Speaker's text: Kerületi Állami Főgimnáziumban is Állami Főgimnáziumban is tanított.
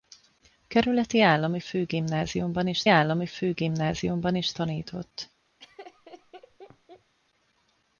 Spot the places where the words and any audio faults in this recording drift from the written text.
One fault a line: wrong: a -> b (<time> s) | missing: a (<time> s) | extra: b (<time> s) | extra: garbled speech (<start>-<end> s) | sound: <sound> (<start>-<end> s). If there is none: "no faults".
sound: laugh (5.6-7.1 s)